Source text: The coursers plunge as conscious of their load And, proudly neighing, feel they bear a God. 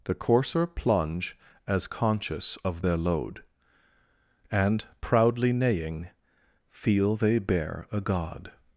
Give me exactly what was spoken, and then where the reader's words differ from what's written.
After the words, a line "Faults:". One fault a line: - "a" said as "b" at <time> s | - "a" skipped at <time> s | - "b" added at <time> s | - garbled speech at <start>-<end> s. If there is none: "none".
The courser plunge as conscious of their load And, proudly neighing, feel they bear a God.
Faults:
- "coursers" said as "courser" at 0.1 s